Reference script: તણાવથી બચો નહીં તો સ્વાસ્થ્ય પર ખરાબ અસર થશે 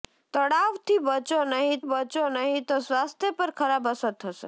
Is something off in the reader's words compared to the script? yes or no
yes